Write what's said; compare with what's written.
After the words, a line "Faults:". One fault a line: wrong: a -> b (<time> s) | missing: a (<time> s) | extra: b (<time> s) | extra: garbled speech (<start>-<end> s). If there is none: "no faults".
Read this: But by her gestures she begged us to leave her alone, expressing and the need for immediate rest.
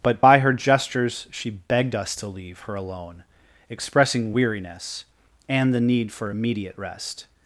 But by her gestures she begged us to leave her alone, expressing weariness and the need for immediate rest.
Faults:
extra: weariness (4.3 s)